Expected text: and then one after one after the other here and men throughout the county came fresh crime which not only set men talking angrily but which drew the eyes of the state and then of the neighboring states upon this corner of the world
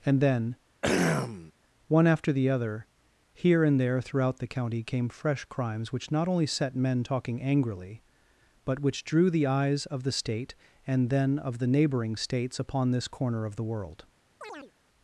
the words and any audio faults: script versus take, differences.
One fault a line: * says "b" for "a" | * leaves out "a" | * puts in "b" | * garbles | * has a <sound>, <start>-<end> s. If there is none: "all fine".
* has a throat clearing, 0.8-1.5 s
* leaves out "one after"
* says "there" for "men"
* says "crimes" for "crime"
* has a chirp, 14.4-14.7 s